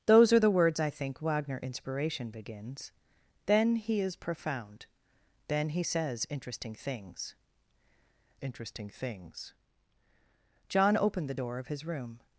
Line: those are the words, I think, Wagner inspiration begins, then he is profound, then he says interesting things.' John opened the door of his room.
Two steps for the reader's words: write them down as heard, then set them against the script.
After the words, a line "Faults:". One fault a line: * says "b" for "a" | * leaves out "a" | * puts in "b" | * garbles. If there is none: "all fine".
those are the words, I think, Wagner inspiration begins, then he is profound, then he says interesting things interesting things.' John opened the door of his room.
Faults:
* puts in "interesting things"